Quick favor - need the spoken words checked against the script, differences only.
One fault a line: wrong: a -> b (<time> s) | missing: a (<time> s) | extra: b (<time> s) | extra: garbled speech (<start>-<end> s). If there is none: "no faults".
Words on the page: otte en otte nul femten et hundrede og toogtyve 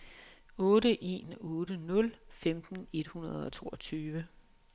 no faults